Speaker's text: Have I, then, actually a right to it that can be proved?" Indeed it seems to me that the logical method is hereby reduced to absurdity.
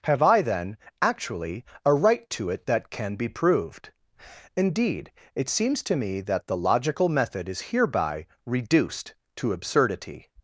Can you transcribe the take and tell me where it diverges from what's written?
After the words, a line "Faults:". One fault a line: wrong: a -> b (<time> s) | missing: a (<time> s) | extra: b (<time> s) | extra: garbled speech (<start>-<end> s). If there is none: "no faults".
Have I, then, actually a right to it that can be proved?" Indeed it seems to me that the logical method is hereby reduced to absurdity.
Faults:
no faults